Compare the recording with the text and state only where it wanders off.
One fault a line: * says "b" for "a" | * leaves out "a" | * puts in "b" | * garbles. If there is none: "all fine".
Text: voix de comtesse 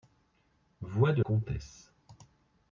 all fine